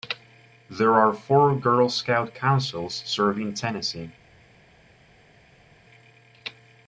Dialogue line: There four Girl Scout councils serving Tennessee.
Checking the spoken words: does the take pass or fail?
fail